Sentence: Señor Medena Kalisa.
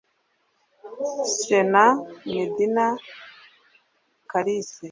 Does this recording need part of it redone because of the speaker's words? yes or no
no